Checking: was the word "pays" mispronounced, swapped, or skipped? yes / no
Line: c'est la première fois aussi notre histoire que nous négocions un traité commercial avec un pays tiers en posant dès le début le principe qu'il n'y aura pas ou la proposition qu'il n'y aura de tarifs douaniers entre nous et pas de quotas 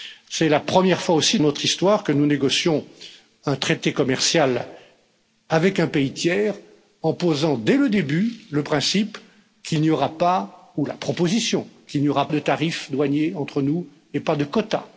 no